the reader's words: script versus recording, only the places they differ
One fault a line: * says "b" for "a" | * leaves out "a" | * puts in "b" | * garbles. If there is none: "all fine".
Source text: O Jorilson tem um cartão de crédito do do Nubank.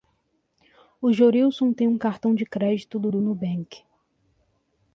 all fine